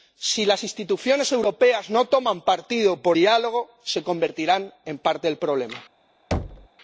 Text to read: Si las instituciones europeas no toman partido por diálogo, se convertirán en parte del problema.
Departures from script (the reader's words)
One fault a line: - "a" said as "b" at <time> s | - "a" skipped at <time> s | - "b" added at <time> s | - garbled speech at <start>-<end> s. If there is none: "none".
none